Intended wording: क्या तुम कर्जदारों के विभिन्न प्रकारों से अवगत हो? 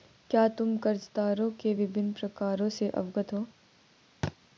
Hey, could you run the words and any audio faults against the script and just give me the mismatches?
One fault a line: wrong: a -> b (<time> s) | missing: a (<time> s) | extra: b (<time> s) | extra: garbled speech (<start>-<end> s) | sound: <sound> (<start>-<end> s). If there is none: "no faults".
sound: thud (4.2-4.4 s)